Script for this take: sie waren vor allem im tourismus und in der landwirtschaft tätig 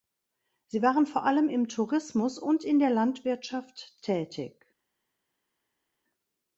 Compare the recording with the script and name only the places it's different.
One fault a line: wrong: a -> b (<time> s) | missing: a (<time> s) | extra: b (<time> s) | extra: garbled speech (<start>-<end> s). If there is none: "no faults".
no faults